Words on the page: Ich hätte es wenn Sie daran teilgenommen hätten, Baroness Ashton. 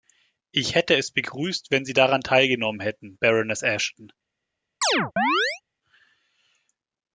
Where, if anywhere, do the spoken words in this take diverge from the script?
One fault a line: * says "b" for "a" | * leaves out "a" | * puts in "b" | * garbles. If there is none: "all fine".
* puts in "begrüßt"